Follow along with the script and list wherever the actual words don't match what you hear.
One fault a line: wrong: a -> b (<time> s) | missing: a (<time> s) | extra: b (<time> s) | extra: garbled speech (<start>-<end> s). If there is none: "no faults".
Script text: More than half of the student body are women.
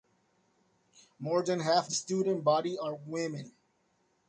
missing: of (1.9 s)